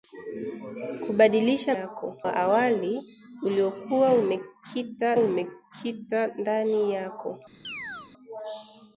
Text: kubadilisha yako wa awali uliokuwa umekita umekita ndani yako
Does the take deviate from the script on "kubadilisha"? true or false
false